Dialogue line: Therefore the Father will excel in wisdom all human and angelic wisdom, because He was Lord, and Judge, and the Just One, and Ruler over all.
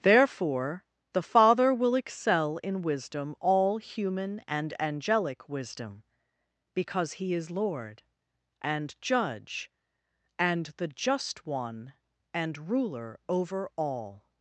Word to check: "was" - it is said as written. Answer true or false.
false